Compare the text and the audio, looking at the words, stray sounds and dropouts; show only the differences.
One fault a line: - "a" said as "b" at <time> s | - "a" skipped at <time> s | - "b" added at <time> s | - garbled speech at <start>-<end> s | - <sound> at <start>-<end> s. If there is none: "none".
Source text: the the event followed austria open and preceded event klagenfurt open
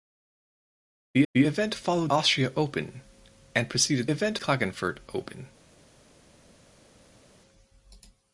none